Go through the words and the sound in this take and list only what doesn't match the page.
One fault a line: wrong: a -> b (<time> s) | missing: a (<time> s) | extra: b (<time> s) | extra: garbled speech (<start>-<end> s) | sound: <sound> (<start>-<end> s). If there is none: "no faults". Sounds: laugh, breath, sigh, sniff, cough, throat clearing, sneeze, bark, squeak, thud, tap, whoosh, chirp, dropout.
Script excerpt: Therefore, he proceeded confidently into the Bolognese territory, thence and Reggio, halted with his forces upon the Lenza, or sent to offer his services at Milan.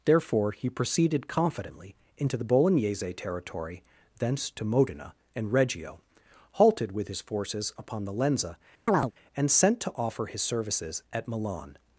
extra: to Modena (4.5 s)
sound: chirp (8.9-9.1 s)
wrong: or -> and (9.4 s)